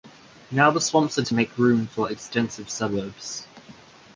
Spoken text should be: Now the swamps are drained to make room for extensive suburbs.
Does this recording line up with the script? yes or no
no